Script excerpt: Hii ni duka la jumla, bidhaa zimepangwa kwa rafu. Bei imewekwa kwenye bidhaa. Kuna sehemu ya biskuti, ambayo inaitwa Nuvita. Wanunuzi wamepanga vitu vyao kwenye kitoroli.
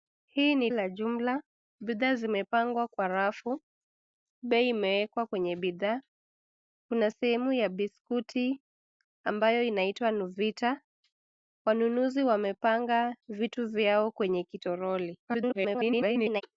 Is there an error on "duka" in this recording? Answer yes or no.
yes